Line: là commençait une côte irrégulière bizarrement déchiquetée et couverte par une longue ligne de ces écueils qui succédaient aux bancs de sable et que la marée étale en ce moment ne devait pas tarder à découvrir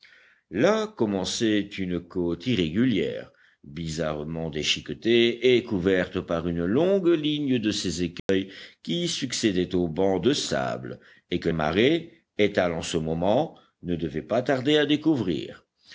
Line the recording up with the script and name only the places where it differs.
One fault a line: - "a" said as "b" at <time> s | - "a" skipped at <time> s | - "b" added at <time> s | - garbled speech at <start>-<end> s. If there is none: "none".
- "la" skipped at 11.5 s